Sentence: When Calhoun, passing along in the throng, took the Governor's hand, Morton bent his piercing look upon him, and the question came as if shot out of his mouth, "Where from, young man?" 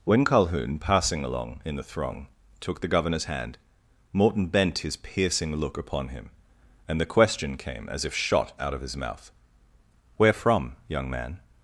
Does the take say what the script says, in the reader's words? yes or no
yes